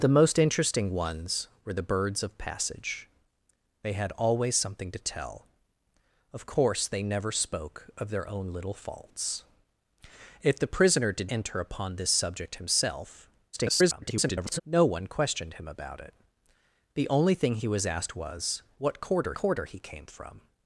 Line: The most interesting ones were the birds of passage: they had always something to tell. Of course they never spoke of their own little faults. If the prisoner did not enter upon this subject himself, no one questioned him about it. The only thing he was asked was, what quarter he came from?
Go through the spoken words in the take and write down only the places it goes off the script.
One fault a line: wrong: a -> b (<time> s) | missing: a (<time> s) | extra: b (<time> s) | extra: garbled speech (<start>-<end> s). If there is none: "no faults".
missing: not (11.3 s)
extra: garbled speech (13.5-14.6 s)
extra: quarter (19.3 s)